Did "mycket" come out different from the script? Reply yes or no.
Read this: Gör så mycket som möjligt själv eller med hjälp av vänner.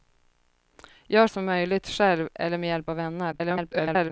yes